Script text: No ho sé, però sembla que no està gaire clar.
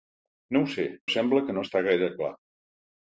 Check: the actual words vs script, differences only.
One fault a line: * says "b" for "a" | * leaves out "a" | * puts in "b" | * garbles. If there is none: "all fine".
* leaves out "però"